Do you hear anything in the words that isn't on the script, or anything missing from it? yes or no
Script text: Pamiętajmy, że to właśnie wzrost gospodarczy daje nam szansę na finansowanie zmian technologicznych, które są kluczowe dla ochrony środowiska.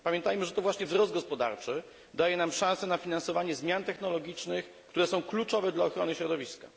no